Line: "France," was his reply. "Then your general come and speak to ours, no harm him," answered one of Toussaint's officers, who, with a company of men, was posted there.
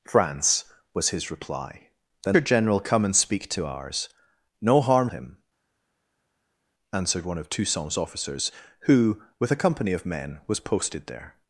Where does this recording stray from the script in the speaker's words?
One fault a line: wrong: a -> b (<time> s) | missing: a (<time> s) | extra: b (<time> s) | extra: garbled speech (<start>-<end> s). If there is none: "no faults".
no faults